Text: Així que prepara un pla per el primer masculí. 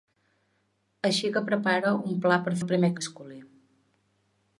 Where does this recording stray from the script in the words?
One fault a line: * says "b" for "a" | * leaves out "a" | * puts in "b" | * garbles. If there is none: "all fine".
all fine